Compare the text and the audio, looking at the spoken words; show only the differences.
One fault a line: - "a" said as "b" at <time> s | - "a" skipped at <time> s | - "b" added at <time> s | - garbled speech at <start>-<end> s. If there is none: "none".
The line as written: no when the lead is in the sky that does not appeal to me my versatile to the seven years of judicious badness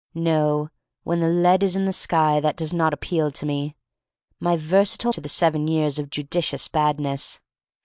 none